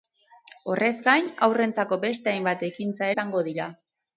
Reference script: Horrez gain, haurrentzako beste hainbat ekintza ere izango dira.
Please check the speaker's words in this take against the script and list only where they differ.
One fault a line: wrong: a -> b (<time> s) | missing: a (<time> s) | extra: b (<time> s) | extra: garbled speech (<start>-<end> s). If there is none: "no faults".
missing: ere (3.1 s)